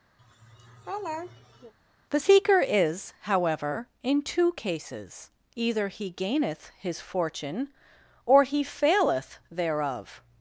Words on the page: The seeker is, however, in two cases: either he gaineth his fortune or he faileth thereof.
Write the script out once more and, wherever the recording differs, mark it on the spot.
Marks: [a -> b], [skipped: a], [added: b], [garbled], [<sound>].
[laugh] The seeker is, however, in two cases: either he gaineth his fortune or he faileth thereof.